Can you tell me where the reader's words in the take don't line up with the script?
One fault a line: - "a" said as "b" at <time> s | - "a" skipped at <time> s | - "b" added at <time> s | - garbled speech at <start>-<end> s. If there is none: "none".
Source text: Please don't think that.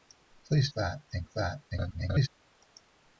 - "don't" said as "that" at 0.7 s
- garbled speech at 1.7-2.3 s